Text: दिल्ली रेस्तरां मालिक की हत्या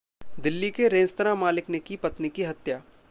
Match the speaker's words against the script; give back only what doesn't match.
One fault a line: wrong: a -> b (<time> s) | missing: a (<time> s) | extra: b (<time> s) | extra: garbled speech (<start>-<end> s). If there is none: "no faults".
extra: के (0.7 s)
extra: ने की पत्नी (1.7 s)